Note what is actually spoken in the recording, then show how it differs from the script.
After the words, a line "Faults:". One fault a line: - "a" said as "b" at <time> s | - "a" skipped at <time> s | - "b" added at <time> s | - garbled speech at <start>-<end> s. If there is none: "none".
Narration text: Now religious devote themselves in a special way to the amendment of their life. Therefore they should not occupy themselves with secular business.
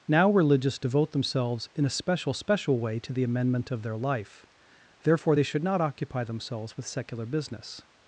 Now religious devote themselves in a special special way to the amendment of their life. Therefore they should not occupy themselves with secular business.
Faults:
- "special" added at 2.3 s